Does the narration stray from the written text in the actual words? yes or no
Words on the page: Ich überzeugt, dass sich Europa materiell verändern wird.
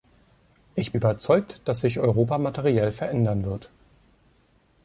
no